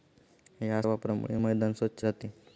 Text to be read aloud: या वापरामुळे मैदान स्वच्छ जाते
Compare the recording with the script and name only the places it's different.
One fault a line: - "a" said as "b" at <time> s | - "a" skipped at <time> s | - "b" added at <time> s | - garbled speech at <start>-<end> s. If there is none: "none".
none